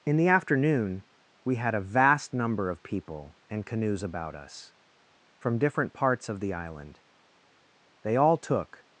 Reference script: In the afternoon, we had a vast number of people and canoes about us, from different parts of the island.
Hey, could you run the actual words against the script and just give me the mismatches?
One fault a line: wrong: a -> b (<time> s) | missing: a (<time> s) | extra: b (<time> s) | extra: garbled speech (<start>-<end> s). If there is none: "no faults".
extra: They all took (8.0 s)